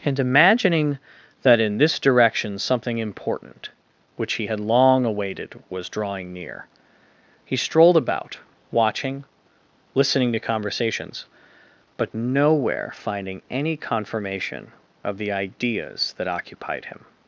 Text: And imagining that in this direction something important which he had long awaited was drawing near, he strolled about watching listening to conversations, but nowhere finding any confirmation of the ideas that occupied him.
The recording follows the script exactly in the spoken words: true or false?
true